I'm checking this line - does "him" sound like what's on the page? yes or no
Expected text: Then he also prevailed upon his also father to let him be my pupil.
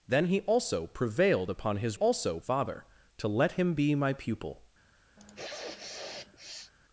yes